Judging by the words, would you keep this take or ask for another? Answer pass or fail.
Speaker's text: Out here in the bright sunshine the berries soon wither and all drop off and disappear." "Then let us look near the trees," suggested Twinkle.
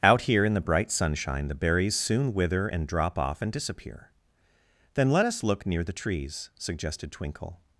fail